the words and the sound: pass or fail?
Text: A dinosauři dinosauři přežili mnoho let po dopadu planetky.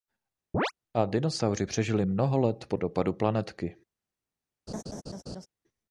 fail